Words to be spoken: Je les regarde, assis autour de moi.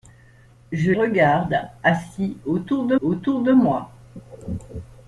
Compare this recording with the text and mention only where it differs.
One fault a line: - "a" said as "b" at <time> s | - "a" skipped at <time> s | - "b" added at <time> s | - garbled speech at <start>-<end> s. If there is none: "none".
- "les" skipped at 0.9 s
- "autour de" added at 3.0 s